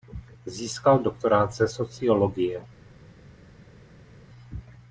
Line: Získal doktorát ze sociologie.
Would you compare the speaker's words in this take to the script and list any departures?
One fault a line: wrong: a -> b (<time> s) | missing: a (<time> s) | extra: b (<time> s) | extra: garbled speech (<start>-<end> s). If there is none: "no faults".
no faults